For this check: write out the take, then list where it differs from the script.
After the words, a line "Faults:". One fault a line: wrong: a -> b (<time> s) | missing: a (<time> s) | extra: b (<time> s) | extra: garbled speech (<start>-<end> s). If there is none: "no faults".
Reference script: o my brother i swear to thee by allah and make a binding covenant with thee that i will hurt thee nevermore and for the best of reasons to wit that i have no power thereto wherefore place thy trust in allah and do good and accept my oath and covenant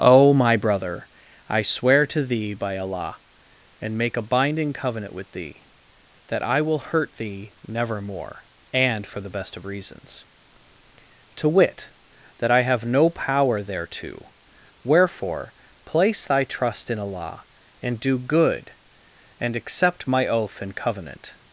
o my brother i swear to thee by allah and make a binding covenant with thee that i will hurt thee nevermore and for the best of reasons to wit that i have no power thereto wherefore place thy trust in allah and do good and accept my oath and covenant
Faults:
no faults